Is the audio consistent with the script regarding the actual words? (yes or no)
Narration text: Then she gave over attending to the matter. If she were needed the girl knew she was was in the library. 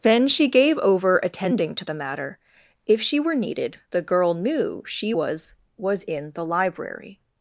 yes